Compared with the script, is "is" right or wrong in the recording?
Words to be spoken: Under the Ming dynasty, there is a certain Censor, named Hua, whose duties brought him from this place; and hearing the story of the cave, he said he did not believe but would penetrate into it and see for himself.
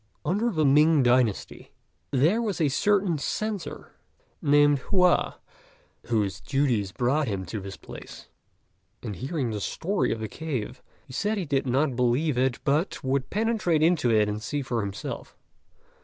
wrong